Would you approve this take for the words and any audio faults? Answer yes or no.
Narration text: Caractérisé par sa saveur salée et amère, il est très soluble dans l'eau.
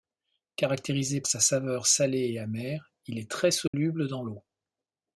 no